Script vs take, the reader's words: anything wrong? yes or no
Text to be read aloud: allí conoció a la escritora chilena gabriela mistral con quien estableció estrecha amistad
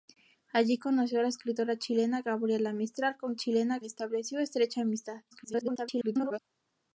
yes